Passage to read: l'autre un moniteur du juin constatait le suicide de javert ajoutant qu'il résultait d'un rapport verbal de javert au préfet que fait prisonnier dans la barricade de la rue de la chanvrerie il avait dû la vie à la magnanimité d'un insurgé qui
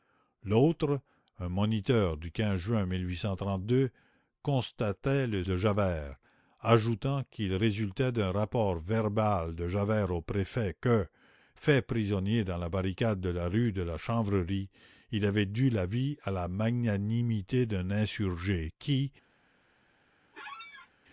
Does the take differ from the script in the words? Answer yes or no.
yes